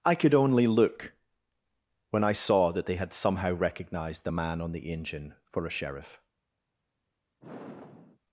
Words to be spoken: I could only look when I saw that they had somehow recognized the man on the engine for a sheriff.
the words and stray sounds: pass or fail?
fail